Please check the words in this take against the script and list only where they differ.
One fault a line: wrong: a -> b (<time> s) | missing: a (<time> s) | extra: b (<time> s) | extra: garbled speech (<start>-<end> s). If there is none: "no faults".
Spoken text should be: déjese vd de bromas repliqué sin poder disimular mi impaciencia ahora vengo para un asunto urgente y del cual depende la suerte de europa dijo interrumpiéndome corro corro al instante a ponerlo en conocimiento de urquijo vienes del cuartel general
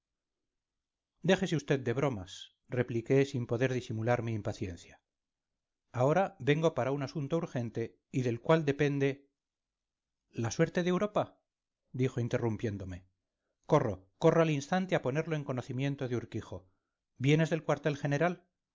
no faults